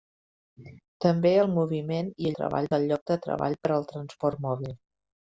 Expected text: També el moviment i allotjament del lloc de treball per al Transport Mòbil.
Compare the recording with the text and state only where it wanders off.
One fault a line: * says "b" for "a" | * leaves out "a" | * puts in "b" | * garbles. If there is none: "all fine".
* says "treball" for "allotjament"